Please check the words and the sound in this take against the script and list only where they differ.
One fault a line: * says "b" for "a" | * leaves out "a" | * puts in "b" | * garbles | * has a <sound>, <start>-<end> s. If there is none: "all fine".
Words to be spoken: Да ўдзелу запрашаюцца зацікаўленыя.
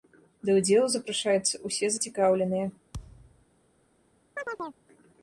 * puts in "ўсе"
* has a thud, 2.9-3.5 s
* has a chirp, 4.4-4.8 s